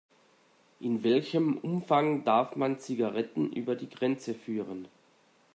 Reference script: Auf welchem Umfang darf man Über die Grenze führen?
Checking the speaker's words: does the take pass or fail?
fail